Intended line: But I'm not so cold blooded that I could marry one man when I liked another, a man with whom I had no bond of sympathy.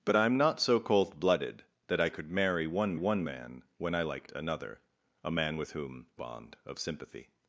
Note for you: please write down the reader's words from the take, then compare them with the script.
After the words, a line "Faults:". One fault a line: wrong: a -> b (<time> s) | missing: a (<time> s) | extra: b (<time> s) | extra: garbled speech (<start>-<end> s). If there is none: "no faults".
But I'm not so cold blooded that I could marry one one man when I liked another, a man with whom bond of sympathy.
Faults:
extra: one (2.9 s)
missing: I had no (6.0 s)